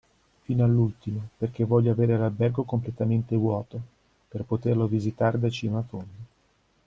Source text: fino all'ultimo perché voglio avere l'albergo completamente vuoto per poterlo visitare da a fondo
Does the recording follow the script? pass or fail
fail